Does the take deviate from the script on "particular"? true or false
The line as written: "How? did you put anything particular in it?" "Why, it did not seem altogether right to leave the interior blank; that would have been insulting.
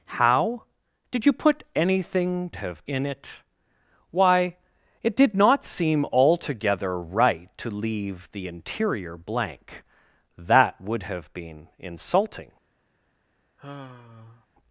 true